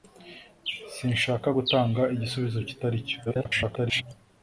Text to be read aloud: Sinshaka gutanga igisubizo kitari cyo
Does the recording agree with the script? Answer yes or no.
no